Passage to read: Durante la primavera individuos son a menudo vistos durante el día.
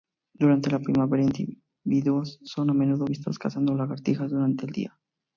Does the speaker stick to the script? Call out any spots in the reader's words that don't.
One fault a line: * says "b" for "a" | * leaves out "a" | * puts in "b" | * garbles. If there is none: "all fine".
* puts in "cazando lagartijas"